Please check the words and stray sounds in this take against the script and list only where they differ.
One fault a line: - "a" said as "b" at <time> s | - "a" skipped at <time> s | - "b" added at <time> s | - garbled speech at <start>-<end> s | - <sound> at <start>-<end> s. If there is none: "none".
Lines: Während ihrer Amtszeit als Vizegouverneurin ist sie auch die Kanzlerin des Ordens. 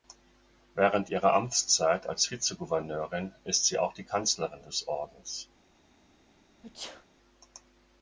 - sneeze at 6.6-7.1 s